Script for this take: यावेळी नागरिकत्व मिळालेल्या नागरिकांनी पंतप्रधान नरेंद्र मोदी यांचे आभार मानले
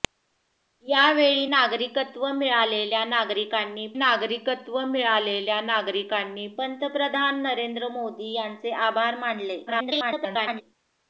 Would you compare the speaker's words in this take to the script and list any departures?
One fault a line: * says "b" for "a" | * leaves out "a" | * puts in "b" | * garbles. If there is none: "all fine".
* puts in "नागरिकत्व मिळालेल्या नागरिकांनी"
* garbles